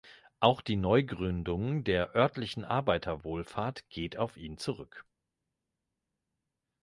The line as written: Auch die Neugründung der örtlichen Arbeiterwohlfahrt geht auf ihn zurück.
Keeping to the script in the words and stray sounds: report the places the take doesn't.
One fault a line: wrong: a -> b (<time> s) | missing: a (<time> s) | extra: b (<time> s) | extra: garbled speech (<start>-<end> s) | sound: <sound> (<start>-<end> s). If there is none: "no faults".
no faults